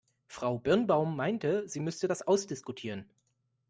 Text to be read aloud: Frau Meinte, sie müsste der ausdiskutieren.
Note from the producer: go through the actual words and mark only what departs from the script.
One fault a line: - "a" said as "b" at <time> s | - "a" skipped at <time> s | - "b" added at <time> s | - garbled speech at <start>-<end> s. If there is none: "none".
- "Birnbaum" added at 0.6 s
- "der" said as "das" at 2.1 s